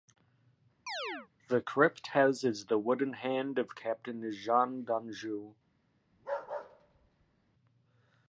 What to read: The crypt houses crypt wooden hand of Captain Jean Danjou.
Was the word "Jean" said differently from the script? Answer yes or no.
no